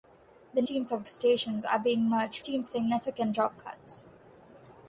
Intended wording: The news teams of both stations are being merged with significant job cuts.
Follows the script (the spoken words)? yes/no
no